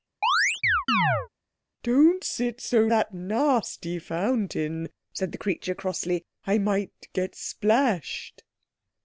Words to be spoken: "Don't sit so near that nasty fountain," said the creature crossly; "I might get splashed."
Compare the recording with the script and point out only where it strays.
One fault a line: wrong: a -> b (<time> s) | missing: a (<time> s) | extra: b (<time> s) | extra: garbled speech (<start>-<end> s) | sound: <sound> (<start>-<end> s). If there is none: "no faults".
sound: chirp (0.2-1.3 s)
missing: near (2.9 s)